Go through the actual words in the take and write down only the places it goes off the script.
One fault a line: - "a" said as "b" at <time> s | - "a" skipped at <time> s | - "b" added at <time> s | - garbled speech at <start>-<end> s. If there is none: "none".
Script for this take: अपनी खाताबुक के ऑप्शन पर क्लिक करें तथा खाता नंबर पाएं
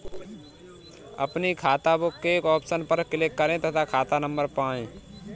none